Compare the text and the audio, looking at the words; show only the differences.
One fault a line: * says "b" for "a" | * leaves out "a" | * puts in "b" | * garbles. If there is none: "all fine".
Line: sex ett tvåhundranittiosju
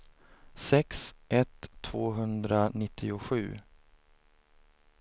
all fine